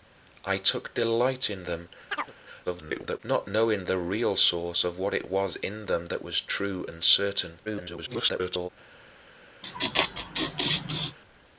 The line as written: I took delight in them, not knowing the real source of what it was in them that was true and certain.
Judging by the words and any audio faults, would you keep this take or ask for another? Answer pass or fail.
fail